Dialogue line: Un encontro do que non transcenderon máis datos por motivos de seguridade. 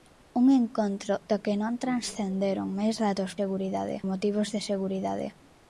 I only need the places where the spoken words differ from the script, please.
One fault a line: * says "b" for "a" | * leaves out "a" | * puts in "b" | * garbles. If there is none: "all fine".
* says "seguridade" for "por"